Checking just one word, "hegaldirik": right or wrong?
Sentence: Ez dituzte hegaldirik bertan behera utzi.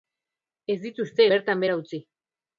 wrong